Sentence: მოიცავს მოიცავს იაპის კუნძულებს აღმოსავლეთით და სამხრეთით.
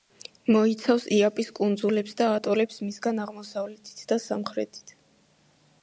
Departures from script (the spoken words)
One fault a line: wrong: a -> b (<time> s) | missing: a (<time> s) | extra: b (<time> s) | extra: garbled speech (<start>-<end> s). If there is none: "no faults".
missing: მოიცავს (1.0 s)
extra: და ატოლებს მისგან (2.2 s)